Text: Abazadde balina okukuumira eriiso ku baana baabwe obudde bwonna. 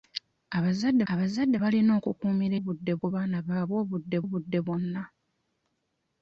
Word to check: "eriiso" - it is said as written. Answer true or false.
false